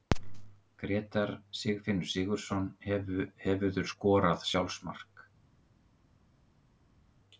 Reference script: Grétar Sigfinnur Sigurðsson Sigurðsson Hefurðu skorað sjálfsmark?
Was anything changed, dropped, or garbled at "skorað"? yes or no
no